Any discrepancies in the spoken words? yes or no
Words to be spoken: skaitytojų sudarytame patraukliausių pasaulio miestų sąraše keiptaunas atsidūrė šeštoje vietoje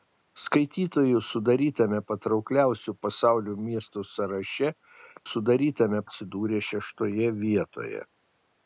yes